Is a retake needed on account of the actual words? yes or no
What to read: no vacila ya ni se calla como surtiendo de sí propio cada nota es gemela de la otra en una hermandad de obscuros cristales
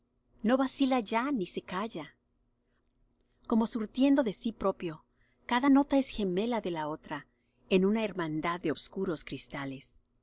no